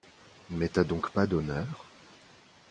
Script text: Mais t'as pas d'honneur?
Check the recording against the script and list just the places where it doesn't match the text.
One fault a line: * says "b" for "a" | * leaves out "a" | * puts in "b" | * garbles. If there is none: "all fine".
* puts in "donc"